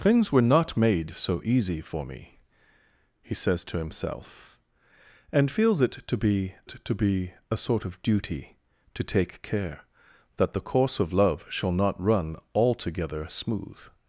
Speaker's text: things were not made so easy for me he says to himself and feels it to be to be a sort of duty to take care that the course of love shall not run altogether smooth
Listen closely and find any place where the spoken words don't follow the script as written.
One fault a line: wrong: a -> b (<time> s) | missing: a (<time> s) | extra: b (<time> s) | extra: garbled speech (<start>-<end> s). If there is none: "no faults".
no faults